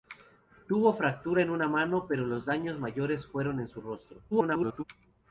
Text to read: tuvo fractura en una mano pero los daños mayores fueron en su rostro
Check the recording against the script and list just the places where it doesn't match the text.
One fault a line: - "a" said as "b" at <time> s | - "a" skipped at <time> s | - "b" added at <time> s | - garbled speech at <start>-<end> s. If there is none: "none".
- garbled speech at 4.3-4.8 s